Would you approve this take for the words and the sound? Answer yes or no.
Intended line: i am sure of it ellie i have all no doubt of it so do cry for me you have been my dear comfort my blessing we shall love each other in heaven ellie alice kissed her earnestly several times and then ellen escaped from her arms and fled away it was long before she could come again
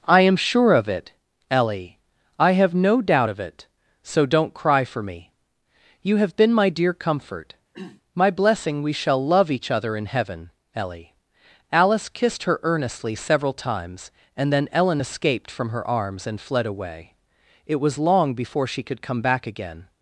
no